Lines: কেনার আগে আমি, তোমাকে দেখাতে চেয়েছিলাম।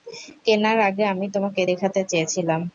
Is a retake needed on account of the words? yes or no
no